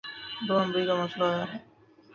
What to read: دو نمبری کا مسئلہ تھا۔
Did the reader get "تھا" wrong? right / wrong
wrong